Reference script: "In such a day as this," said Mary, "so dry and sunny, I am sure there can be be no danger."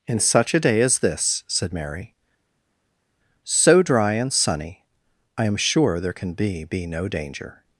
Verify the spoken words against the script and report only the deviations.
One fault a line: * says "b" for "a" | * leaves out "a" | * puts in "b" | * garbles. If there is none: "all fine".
all fine